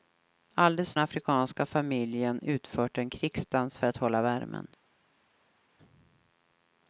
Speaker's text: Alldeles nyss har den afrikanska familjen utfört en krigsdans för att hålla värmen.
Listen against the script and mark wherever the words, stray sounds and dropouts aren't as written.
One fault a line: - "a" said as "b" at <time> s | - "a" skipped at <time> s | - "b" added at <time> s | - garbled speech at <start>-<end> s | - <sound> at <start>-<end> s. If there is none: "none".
- "nyss har den" skipped at 1.0 s